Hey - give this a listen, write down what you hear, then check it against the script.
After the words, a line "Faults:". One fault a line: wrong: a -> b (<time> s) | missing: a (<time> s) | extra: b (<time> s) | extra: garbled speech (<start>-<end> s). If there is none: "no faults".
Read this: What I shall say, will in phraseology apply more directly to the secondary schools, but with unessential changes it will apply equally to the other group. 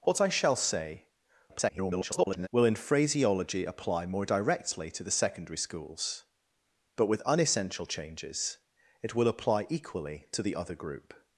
What I shall say, [garbled] will in phraseology apply more directly to the secondary schools, but with unessential changes it will apply equally to the other group.
Faults:
extra: garbled speech (1.5-2.5 s)